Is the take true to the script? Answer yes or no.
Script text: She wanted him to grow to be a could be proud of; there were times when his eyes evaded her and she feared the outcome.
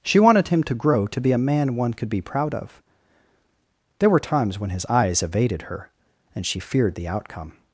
no